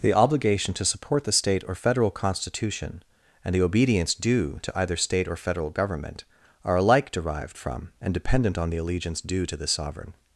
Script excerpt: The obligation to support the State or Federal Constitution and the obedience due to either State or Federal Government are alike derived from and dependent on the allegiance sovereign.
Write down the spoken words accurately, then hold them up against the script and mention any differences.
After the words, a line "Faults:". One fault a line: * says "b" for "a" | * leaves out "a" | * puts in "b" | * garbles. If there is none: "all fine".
The obligation to support the State or Federal Constitution and the obedience due to either State or Federal Government are alike derived from and dependent on the allegiance due to this sovereign.
Faults:
* puts in "due to this"